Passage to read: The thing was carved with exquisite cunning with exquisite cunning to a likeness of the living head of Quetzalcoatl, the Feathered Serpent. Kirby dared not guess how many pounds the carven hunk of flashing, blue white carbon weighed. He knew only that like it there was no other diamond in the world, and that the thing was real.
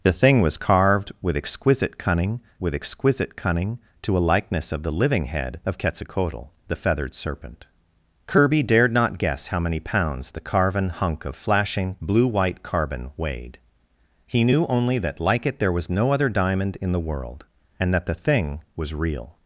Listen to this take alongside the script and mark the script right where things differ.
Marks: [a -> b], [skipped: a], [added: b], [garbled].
The thing was carved with exquisite cunning with exquisite cunning to a likeness of the living head of Quetzalcoatl, the Feathered Serpent. Kirby dared not guess how many pounds the carven hunk of flashing, blue white carbon weighed. He knew only that like it there was no other diamond in the world, and that the thing was real.